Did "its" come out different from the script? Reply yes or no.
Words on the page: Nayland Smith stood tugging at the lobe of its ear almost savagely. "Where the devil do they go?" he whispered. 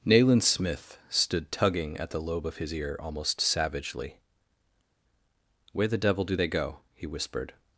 yes